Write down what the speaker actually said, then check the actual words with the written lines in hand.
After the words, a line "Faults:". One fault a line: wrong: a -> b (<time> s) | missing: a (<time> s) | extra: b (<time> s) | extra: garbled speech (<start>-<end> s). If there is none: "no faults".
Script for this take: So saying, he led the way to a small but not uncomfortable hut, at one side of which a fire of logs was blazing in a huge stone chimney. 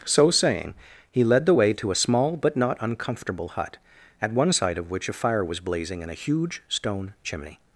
So saying, he led the way to a small but not uncomfortable hut, at one side of which a fire was blazing in a huge stone chimney.
Faults:
missing: of logs (5.4 s)